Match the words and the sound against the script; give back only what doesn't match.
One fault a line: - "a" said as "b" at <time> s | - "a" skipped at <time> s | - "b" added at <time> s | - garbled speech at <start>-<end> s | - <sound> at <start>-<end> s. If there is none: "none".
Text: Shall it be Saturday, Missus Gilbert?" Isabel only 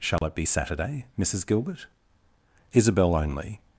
- dropout at 0.2-0.2 s